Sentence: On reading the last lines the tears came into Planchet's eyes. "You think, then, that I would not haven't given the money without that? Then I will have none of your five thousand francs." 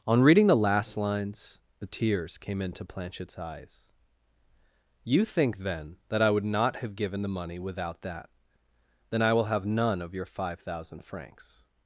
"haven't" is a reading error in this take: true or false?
true